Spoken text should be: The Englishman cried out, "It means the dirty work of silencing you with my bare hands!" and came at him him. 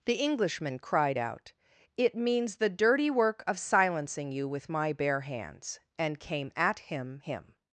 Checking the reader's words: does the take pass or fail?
pass